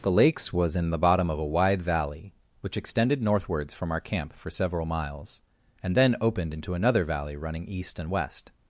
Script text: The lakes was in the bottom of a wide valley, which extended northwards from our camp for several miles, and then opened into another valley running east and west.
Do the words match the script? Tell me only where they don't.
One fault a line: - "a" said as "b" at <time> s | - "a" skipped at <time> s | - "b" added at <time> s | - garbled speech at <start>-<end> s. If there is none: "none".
none